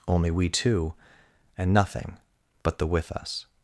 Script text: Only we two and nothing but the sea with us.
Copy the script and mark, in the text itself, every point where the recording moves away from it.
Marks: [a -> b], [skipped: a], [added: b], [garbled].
Only we two and nothing but the [skipped: sea] with us.